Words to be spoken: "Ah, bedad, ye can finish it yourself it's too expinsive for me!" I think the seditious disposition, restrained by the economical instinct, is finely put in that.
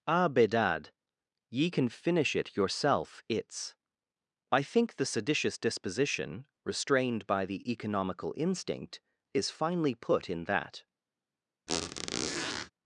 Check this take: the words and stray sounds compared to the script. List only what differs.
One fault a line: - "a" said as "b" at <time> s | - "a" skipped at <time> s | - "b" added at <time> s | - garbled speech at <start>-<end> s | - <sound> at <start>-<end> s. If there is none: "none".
- "too expinsive for me" skipped at 3.7 s
- squeak at 11.7-12.7 s